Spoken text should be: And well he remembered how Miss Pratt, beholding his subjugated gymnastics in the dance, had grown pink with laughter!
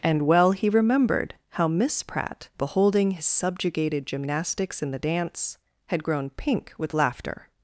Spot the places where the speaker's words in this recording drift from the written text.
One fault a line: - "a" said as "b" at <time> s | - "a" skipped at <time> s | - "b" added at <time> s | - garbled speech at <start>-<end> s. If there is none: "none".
none